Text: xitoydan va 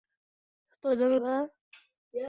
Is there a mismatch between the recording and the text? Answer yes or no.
no